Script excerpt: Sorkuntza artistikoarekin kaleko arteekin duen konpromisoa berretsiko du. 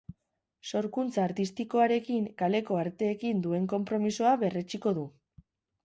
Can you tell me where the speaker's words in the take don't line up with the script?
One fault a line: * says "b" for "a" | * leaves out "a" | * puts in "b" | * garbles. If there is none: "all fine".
all fine